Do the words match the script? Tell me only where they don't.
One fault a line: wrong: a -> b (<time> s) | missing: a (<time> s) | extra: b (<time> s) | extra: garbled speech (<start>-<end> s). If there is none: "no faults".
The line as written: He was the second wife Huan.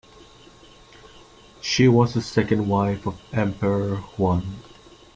wrong: He -> She (1.6 s)
extra: of Emperor (3.0 s)